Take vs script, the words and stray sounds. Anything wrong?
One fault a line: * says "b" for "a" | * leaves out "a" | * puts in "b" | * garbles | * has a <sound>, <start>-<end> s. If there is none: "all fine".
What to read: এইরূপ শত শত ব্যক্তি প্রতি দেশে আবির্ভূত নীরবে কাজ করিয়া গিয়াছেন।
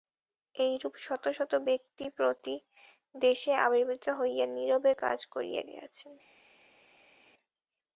* puts in "হইয়া"